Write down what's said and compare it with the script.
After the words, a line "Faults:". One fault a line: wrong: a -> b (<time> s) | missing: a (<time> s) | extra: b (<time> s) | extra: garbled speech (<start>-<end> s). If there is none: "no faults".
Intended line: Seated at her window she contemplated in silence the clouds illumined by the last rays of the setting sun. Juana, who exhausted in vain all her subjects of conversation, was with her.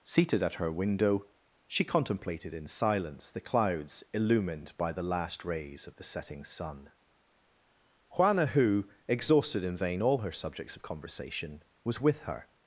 Seated at her window she contemplated in silence the clouds illumined by the last rays of the setting sun. Juana, who exhausted in vain all her subjects of conversation, was with her.
Faults:
no faults